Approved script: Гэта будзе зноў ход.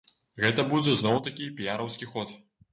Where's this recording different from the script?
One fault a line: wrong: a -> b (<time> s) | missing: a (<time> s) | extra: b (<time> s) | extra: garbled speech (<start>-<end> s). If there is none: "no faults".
extra: такі піяраўскі (1.3 s)